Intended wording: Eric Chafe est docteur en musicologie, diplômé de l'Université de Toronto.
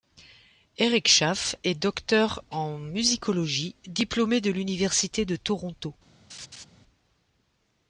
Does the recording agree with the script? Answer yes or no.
yes